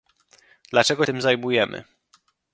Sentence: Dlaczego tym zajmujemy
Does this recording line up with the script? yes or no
yes